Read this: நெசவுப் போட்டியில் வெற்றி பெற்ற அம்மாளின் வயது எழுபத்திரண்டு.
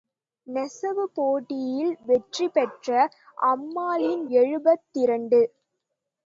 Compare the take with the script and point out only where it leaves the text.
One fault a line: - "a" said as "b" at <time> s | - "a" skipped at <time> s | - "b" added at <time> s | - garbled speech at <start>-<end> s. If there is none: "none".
- "வயது" skipped at 4.2 s